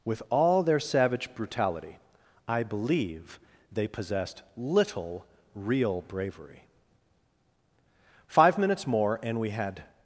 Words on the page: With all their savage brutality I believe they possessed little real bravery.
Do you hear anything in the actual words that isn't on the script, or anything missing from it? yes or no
yes